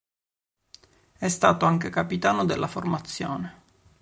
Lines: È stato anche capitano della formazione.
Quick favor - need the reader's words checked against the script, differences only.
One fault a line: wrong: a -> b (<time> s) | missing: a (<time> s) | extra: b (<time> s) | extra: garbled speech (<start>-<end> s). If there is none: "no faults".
no faults